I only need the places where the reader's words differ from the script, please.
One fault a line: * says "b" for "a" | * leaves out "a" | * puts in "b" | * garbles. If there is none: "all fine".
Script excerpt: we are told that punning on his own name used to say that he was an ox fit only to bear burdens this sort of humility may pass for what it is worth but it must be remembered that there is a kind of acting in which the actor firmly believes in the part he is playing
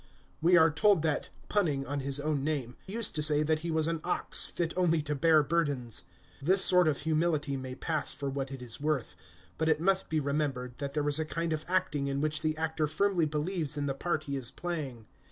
all fine